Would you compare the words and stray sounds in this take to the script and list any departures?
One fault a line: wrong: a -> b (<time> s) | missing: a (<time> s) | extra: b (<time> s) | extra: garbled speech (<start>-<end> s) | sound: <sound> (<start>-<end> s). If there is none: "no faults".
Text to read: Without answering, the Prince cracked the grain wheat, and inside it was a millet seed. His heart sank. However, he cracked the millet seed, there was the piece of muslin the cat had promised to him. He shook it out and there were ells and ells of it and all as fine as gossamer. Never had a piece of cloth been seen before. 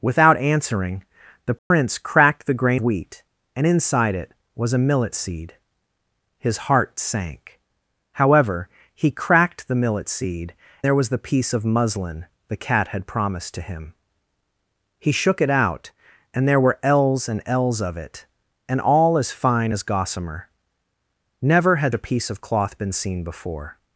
sound: dropout (1.6-1.7 s)